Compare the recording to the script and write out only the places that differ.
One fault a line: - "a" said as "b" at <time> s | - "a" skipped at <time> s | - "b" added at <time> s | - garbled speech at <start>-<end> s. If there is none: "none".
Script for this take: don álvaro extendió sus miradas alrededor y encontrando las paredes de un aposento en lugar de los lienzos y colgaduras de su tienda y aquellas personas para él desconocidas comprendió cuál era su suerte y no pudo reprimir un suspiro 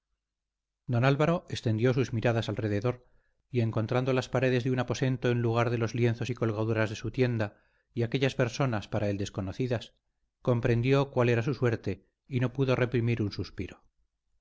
none